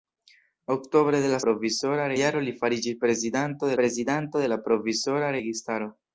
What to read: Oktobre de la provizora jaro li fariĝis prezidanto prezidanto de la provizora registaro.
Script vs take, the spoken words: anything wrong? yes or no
no